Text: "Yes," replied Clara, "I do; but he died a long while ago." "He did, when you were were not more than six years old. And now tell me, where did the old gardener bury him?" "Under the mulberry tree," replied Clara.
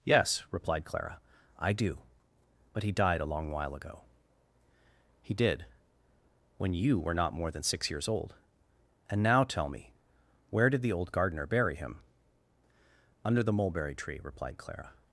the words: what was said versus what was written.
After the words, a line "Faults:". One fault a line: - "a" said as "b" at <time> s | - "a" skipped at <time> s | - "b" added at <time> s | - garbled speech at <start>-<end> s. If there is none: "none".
"Yes," replied Clara, "I do; but he died a long while ago." "He did, when you were not more than six years old. And now tell me, where did the old gardener bury him?" "Under the mulberry tree," replied Clara.
Faults:
- "were" skipped at 7.1 s